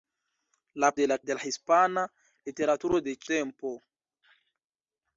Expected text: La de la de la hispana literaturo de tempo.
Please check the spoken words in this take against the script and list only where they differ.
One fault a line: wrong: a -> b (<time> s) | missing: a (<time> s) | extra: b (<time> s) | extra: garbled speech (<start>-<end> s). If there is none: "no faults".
no faults